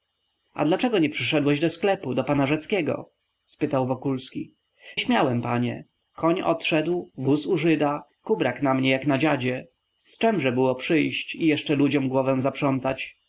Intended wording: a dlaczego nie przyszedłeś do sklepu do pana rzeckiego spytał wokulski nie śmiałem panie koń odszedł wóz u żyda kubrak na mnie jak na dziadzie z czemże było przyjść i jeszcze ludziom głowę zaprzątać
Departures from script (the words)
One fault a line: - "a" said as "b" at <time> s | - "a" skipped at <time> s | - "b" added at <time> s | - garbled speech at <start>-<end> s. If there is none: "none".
- "nie" skipped at 4.5 s